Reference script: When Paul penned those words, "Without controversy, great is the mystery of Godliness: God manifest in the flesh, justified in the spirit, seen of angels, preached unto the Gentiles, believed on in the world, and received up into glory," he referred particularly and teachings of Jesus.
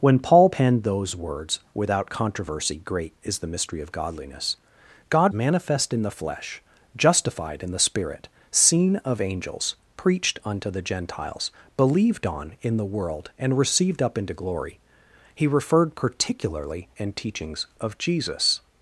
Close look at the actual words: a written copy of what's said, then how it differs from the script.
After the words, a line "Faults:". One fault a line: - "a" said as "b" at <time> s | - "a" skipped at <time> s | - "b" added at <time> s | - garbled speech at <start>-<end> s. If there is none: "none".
When Paul penned those words, "Without controversy, great is the mystery of Godliness: God manifest in the flesh, justified in the spirit, seen of angels, preached unto the Gentiles, believed on in the world, and received up into glory," he referred particularly and teachings of Jesus.
Faults:
none